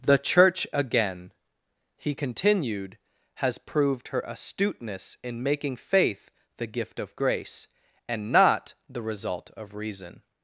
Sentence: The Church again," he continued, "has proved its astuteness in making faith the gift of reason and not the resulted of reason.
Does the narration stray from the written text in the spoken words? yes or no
yes